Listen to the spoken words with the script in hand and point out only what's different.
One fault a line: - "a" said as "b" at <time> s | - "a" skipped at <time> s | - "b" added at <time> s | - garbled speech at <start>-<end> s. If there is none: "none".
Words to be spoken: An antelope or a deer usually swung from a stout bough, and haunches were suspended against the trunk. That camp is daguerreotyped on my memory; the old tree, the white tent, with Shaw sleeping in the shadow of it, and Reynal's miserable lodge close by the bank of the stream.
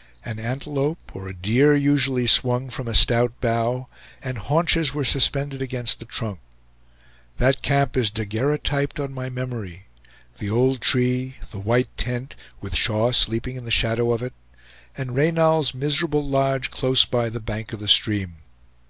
none